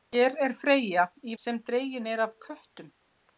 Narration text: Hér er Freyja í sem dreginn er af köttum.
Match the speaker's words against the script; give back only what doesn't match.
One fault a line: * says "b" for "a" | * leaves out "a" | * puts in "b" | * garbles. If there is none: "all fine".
all fine